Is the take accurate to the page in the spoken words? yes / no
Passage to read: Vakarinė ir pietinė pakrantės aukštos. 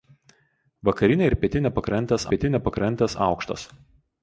no